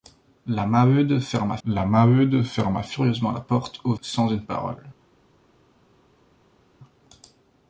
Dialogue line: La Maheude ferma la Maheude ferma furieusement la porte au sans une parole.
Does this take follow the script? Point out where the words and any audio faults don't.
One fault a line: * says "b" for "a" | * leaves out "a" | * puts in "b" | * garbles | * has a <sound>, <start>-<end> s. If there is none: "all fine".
all fine